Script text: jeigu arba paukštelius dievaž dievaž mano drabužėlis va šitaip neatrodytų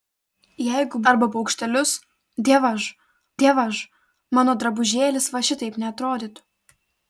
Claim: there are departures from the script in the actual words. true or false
false